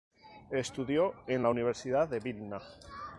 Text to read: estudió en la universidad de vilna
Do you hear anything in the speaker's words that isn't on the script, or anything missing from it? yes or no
no